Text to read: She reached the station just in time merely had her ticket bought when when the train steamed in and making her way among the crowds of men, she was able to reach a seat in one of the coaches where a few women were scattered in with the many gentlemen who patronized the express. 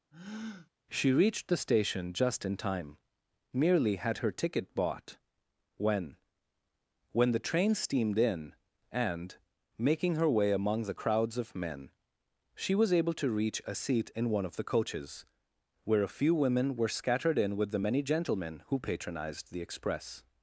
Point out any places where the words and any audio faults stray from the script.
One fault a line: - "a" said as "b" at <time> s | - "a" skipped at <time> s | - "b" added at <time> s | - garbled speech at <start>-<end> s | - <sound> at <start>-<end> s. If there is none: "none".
- breath at 0.1-0.7 s